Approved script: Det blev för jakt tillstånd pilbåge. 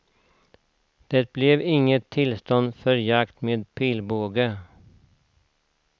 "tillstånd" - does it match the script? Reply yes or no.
no